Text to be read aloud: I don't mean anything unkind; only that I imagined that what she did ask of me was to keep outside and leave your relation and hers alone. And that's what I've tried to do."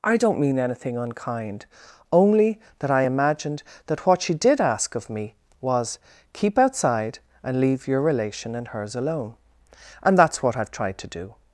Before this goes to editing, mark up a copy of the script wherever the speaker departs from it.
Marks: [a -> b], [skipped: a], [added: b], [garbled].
I don't mean anything unkind; only that I imagined that what she did ask of me was [skipped: to] keep outside and leave your relation and hers alone. And that's what I've tried to do."